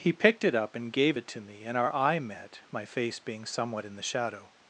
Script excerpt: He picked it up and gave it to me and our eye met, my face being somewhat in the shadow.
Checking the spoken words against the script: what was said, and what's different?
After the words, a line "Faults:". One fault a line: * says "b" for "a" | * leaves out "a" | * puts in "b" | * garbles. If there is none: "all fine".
He picked it up and gave it to me and our eye met, my face being somewhat in the shadow.
Faults:
all fine